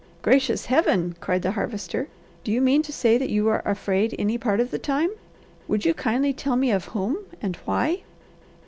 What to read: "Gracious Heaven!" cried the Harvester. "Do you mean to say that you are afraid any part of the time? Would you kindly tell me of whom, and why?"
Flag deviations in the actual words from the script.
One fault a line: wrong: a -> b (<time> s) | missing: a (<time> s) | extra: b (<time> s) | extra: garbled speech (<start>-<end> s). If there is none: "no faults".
no faults